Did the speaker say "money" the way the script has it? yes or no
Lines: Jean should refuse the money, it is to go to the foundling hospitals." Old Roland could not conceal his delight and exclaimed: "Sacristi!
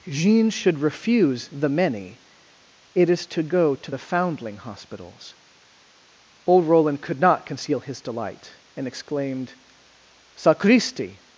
no